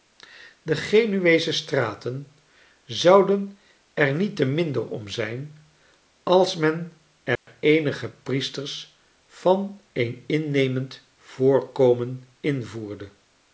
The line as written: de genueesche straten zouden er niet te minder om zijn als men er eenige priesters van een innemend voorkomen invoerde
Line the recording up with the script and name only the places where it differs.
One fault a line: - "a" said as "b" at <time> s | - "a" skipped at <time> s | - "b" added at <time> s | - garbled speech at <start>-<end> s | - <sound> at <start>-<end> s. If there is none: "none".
- dropout at 7.4-7.5 s